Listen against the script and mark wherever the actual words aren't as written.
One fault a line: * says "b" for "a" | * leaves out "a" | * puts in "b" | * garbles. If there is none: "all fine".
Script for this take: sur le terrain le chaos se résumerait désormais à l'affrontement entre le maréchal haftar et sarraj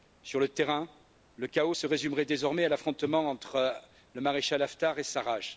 all fine